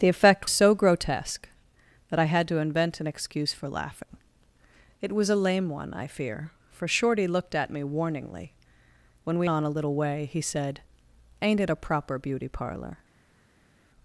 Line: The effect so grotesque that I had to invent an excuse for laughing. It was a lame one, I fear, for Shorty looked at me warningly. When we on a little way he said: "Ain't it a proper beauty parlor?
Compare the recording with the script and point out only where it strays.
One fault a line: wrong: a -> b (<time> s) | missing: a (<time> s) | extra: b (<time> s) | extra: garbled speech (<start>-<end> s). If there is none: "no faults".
no faults